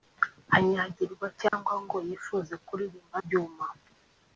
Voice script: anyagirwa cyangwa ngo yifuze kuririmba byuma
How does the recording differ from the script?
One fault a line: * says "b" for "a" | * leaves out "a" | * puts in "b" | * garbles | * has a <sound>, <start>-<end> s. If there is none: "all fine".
* has a dropout, 1.5-1.5 s